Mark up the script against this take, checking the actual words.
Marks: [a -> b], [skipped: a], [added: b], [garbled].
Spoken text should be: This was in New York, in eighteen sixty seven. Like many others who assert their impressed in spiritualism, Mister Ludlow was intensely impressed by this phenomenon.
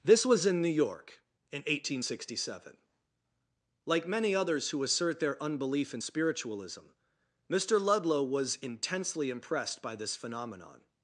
This was in New York, in eighteen sixty seven. Like many others who assert their [impressed -> unbelief] in spiritualism, Mister Ludlow was intensely impressed by this phenomenon.